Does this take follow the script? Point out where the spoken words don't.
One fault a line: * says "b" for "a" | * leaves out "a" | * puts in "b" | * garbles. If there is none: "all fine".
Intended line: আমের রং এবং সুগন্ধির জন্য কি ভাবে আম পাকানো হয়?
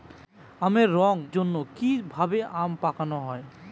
* leaves out "এবং সুগন্ধির"